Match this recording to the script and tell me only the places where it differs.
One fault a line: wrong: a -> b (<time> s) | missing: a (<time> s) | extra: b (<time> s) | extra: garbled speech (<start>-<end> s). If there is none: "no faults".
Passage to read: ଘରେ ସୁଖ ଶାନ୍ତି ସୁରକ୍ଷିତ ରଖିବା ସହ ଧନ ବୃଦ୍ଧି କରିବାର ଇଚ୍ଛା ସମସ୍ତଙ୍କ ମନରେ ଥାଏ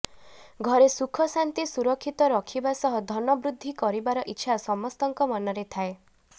no faults